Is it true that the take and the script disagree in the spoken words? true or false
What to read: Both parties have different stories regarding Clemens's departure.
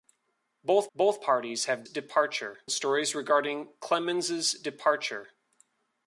true